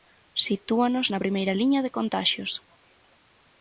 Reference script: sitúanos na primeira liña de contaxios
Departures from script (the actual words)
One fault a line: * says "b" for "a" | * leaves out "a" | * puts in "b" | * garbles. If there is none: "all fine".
all fine